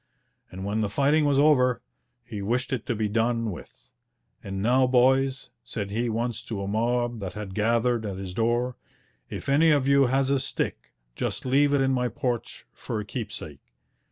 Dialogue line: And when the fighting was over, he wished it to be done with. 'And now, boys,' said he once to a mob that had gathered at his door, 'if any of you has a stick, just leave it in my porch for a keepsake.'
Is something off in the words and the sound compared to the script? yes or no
no